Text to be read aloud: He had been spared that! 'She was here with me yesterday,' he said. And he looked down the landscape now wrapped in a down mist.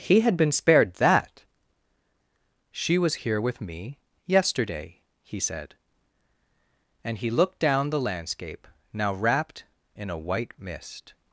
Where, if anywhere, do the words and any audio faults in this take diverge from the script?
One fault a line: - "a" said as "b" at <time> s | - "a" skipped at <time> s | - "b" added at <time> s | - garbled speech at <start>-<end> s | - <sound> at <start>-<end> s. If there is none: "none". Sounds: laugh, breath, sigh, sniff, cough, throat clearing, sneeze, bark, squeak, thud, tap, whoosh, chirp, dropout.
- "down" said as "white" at 10.2 s